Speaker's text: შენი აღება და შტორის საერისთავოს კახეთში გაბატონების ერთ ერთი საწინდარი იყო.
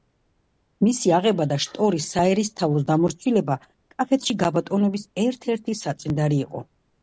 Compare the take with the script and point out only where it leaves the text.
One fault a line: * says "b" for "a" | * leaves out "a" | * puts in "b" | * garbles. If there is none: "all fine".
* says "მისი" for "შენი"
* puts in "დამორჩილება"